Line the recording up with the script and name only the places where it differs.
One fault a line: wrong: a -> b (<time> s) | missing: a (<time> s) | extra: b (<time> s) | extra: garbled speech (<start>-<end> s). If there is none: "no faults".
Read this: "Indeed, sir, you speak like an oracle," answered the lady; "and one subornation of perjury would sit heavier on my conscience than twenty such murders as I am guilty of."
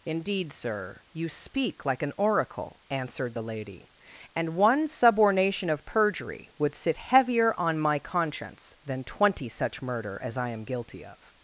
wrong: murders -> murder (9.8 s)